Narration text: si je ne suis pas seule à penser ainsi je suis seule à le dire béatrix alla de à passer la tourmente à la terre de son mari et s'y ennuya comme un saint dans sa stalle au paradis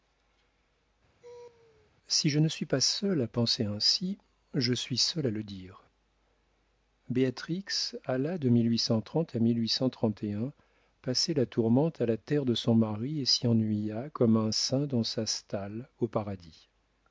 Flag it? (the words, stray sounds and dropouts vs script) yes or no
yes